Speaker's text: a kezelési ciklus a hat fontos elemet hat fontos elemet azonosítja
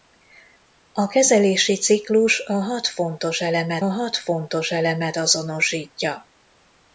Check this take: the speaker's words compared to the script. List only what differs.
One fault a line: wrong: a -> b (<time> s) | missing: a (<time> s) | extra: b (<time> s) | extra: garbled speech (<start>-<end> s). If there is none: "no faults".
no faults